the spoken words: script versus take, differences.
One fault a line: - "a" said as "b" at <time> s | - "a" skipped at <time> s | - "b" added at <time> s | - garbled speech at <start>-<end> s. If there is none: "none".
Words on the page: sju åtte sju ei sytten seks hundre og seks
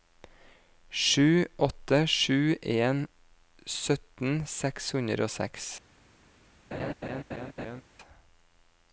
- "ei" said as "en" at 2.6 s